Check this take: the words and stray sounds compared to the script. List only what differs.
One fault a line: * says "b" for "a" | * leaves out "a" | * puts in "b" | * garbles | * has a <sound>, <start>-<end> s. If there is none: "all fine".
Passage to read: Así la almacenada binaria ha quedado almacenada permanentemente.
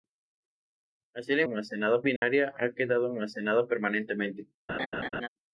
* has a dropout, 2.2-2.2 s
* has a laugh, 4.7-5.3 s